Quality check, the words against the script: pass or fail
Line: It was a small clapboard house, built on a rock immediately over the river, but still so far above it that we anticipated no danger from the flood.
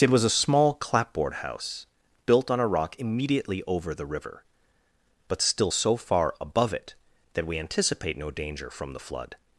fail